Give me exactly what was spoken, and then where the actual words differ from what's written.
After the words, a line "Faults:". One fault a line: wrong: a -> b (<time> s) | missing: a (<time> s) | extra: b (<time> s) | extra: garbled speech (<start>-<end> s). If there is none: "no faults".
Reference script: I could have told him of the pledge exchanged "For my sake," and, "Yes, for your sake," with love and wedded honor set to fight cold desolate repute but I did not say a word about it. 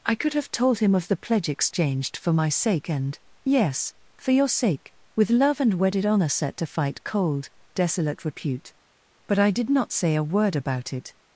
I could have told him of the pledge exchanged "For my sake," and, "Yes, for your sake," with love and wedded honor set to fight cold desolate repute but I did not say a word about it.
Faults:
no faults